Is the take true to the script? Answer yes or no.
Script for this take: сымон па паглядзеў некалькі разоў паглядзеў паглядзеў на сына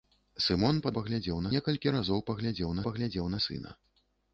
yes